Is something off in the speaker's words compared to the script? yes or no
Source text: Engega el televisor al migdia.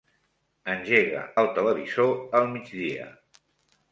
no